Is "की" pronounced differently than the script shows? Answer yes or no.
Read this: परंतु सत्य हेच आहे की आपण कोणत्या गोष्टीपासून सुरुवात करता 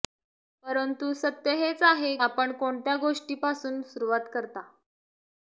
yes